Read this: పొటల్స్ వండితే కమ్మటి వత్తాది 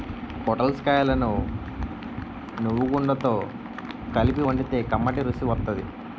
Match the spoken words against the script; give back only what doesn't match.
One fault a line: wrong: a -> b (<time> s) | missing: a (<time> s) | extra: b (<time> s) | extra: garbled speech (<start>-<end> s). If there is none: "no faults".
extra: కాయలను నువ్వుగుండతో కలిపి (0.8 s)
extra: రుసి (5.2 s)